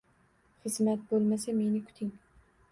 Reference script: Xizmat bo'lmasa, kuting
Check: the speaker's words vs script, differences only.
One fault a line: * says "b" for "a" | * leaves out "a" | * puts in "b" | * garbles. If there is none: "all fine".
* puts in "meni"